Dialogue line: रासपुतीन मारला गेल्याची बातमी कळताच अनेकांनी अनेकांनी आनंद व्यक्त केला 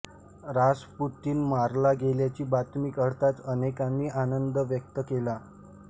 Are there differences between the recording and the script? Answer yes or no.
yes